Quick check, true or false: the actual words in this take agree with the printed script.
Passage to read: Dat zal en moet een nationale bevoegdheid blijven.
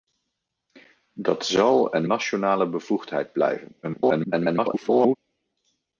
false